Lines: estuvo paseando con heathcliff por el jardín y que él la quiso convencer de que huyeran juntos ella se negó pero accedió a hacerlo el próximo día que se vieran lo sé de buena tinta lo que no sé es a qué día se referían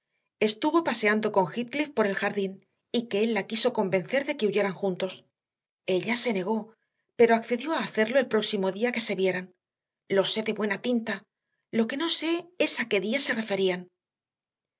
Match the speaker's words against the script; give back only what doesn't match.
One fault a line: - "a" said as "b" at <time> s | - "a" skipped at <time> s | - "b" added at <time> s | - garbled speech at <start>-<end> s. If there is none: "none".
none